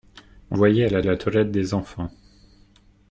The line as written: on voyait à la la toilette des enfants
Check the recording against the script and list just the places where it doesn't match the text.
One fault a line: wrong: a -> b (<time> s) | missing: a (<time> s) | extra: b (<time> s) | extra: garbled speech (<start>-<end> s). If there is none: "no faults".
no faults